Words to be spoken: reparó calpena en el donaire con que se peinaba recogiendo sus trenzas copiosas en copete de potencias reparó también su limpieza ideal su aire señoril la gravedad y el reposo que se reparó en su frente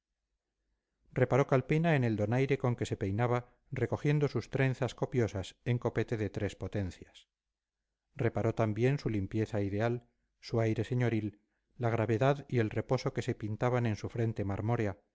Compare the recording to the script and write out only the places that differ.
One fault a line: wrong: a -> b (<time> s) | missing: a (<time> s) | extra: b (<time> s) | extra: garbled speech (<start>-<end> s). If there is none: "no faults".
extra: tres (6.3 s)
wrong: reparó -> pintaban (13.3 s)